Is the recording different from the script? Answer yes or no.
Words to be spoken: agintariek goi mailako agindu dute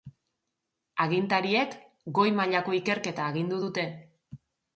yes